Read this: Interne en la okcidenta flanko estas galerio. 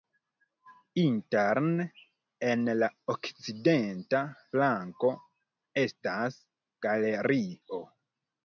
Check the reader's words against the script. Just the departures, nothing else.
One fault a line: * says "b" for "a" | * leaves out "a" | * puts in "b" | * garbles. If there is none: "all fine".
all fine